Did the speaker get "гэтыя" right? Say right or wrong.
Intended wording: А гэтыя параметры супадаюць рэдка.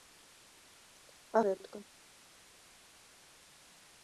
wrong